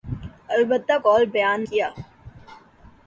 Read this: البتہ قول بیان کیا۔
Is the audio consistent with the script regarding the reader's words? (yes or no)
yes